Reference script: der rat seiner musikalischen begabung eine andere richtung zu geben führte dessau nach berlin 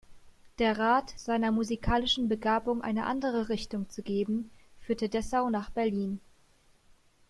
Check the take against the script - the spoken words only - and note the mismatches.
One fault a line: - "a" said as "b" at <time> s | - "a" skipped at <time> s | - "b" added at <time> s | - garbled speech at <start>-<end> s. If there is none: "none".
none